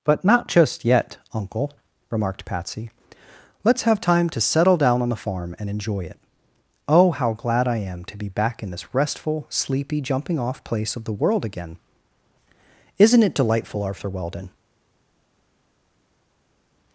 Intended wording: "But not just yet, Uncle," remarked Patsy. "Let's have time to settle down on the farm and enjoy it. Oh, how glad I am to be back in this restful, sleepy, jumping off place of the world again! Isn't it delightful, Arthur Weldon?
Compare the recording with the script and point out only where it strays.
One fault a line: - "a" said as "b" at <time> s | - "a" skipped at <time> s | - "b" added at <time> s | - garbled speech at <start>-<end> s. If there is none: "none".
none